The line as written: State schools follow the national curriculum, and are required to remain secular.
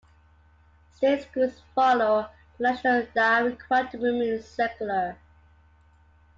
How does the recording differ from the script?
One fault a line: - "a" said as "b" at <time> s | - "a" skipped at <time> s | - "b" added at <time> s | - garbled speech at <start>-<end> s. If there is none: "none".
- "curriculum and" skipped at 3.0 s